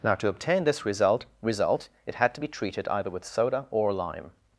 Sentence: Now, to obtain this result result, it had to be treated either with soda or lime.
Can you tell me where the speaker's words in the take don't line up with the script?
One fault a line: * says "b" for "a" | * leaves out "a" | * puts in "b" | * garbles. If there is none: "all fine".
all fine